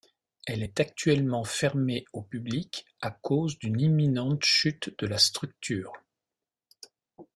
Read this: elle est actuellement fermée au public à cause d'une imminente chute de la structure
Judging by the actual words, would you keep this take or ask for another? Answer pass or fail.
pass